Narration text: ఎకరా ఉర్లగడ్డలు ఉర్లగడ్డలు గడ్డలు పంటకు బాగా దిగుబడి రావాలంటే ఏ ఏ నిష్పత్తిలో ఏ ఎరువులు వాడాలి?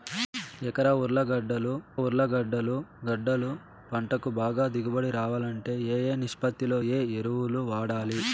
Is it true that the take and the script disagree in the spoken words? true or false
false